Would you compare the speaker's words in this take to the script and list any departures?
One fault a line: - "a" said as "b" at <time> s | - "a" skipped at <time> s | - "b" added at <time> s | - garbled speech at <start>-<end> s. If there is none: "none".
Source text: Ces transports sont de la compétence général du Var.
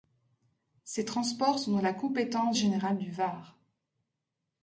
none